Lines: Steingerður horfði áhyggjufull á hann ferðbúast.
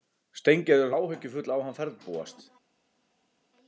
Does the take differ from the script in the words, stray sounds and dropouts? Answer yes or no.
yes